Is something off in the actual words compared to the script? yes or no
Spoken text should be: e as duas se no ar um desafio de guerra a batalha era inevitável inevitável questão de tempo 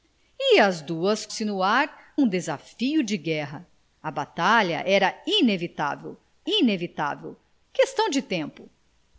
no